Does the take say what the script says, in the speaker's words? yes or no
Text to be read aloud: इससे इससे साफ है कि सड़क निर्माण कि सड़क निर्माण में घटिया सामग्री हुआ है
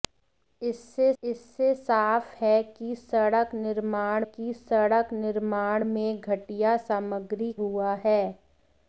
yes